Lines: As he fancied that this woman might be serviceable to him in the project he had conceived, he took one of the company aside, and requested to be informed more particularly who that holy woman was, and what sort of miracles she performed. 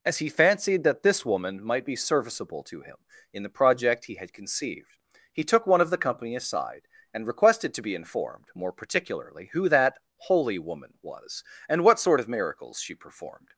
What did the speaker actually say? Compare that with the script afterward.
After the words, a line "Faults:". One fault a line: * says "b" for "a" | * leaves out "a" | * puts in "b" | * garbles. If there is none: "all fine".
As he fancied that this woman might be serviceable to him in the project he had conceived, he took one of the company aside, and requested to be informed more particularly who that holy woman was, and what sort of miracles she performed.
Faults:
all fine